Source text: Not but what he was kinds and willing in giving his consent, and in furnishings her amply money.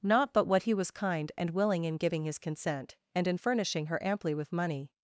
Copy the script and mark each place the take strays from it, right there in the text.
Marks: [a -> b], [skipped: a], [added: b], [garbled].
Not but what he was [kinds -> kind] and willing in giving his consent, and in [furnishings -> furnishing] her amply [added: with] money.